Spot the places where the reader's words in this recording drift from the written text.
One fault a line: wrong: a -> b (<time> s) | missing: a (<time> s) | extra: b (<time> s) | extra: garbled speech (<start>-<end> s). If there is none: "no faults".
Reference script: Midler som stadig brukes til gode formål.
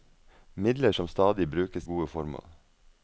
missing: til (1.9 s)